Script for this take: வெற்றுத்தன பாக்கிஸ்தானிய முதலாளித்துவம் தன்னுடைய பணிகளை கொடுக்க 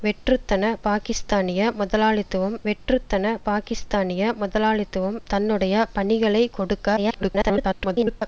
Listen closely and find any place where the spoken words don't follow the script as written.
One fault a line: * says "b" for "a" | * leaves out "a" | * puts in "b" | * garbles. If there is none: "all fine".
* puts in "வெற்றுத்தன பாக்கிஸ்தானிய முதலாளித்துவம்"
* garbles